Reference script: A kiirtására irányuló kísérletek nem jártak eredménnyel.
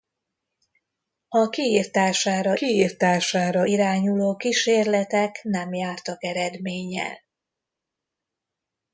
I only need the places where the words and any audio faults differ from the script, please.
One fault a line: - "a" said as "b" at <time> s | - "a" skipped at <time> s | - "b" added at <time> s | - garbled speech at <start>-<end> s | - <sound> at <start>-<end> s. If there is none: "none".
- "kiirtására" added at 2.5 s